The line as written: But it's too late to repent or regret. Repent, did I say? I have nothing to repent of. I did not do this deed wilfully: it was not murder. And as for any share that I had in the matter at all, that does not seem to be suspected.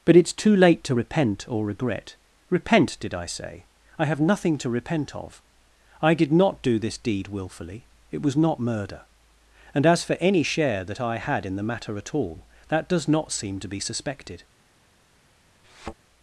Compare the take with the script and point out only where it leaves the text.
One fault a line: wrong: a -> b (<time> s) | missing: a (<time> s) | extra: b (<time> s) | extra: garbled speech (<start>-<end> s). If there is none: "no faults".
no faults